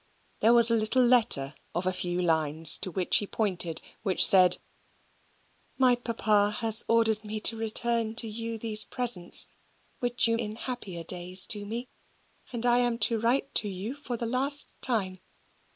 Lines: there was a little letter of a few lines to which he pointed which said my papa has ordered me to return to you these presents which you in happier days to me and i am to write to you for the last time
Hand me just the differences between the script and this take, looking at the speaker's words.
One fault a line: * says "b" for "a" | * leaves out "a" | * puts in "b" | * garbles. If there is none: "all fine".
all fine